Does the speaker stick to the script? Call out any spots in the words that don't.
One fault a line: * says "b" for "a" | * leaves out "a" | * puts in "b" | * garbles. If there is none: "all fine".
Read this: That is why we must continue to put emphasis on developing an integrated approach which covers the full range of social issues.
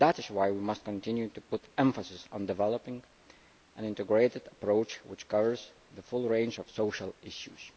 all fine